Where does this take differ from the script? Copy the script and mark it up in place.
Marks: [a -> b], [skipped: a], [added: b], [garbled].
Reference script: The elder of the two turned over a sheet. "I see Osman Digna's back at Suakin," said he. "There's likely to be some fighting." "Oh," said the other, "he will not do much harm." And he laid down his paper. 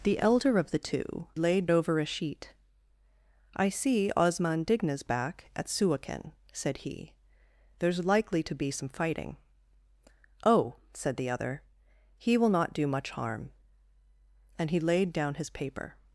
The elder of the two [turned -> laid] over a sheet. "I see Osman Digna's back at Suakin," said he. "There's likely to be some fighting." "Oh," said the other, "he will not do much harm." And he laid down his paper.